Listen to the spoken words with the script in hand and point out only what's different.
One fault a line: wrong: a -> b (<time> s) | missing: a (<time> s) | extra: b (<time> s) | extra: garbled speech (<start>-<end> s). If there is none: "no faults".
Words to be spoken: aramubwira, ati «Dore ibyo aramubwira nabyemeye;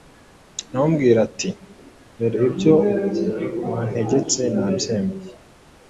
wrong: aramubwira -> wantegetse (3.7 s)